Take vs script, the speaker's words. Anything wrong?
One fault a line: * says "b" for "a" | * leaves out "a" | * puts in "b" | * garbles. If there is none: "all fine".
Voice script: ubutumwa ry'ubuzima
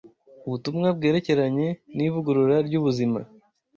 * puts in "bwerekeranye n'ivugurura"